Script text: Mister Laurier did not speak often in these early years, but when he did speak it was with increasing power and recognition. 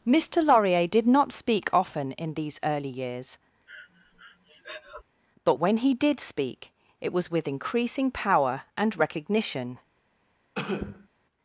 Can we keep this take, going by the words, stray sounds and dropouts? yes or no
no